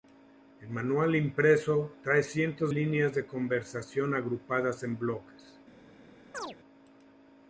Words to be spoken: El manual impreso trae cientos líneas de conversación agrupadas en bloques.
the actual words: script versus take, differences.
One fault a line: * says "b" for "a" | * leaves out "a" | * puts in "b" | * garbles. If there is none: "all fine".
all fine